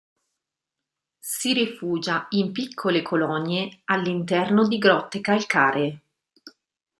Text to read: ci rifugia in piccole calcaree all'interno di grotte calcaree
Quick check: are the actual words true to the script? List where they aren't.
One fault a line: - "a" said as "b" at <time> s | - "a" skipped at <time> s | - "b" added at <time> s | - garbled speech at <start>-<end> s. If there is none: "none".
- "ci" said as "si" at 1.2 s
- "calcaree" said as "colonie" at 3.0 s